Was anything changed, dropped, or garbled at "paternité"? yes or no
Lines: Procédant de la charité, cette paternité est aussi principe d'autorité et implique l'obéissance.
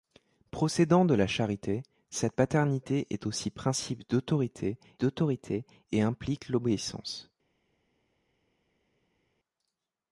no